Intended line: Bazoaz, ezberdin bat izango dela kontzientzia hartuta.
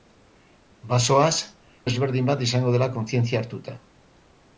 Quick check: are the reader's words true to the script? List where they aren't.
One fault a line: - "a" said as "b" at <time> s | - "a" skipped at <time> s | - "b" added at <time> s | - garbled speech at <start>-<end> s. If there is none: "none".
none